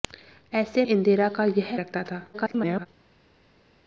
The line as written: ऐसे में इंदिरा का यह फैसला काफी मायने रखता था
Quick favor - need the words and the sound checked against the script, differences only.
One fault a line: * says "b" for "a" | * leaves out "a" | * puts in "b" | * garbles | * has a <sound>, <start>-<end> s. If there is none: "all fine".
* leaves out "में"
* leaves out "फैसला काफी मायने"
* garbles